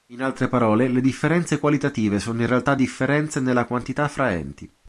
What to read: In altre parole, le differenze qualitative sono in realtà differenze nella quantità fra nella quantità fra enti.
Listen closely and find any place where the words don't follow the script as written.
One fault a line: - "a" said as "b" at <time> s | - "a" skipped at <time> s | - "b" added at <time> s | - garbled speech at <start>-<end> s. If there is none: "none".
- "nella quantità fra" skipped at 4.3 s